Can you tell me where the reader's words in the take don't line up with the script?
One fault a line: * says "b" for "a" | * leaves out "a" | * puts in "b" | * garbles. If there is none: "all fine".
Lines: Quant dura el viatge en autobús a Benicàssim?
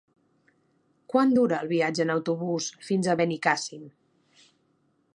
* puts in "fins"